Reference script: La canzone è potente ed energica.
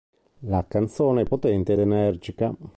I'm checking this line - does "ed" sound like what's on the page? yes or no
no